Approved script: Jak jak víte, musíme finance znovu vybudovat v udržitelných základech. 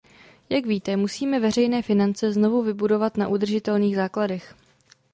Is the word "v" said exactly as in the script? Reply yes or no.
no